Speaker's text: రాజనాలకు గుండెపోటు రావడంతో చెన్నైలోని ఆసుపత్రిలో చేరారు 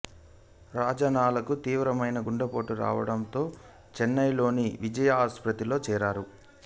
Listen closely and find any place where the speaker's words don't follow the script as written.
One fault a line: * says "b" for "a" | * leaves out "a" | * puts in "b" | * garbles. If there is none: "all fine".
* puts in "తీవ్రమైన"
* puts in "విజయ"